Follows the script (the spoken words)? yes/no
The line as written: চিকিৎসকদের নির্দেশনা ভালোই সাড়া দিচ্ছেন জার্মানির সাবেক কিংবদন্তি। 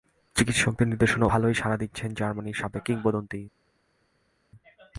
yes